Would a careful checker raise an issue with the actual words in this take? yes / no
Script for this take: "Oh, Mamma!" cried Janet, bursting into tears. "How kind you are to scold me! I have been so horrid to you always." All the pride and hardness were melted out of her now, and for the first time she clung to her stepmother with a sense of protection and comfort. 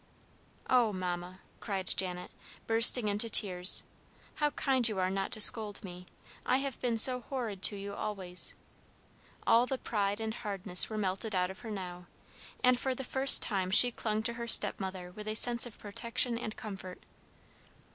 yes